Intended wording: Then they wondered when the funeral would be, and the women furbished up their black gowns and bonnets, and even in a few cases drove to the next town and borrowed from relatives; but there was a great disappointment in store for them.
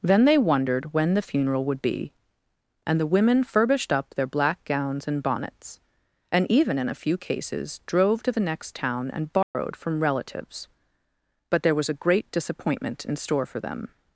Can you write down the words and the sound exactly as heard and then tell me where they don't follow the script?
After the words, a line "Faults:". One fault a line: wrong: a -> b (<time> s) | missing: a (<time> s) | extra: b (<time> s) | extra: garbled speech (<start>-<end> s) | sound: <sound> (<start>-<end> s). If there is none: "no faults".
Then they wondered when the funeral would be, and the women furbished up their black gowns and bonnets, and even in a few cases drove to the next town and borrowed from relatives; but there was a great disappointment in store for them.
Faults:
sound: dropout (9.4-9.5 s)